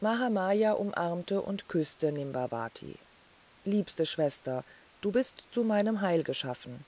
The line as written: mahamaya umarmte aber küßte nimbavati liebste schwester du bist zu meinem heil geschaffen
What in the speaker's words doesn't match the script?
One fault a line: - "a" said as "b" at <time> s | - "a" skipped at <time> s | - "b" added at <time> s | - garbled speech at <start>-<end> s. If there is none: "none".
- "aber" said as "und" at 1.5 s